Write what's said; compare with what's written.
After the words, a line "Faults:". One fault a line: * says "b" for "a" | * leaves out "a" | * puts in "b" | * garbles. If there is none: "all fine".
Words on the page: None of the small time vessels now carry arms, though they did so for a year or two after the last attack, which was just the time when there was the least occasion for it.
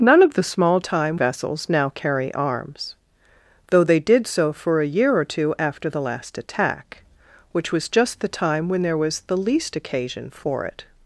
None of the small time vessels now carry arms, though they did so for a year or two after the last attack, which was just the time when there was the least occasion for it.
Faults:
all fine